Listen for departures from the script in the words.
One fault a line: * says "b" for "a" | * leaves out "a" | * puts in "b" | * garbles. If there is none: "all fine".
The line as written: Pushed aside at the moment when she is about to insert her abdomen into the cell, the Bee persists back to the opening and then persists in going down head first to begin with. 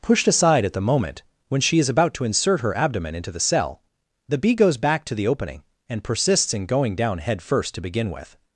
* says "goes" for "persists"
* leaves out "then"